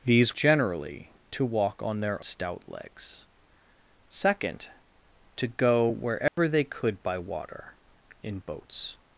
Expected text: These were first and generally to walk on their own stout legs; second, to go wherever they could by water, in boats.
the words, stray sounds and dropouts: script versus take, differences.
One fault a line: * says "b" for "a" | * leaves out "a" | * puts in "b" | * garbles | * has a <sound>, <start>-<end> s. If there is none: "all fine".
* leaves out "were first and"
* leaves out "own"
* has a dropout, 6.3-6.4 s